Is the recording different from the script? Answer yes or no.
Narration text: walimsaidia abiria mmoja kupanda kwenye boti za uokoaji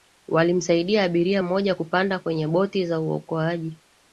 no